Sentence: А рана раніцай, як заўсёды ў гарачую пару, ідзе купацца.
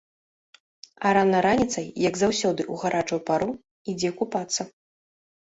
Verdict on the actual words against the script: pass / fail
pass